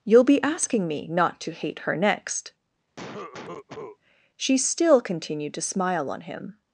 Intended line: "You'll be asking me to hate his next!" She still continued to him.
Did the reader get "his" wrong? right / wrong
wrong